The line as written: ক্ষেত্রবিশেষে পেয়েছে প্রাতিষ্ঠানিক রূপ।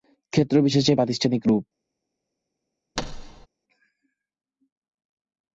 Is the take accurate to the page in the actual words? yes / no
no